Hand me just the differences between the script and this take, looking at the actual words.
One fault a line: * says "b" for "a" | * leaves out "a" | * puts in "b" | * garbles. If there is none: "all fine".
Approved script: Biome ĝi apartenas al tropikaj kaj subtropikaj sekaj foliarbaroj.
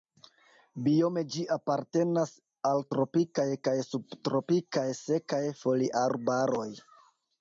all fine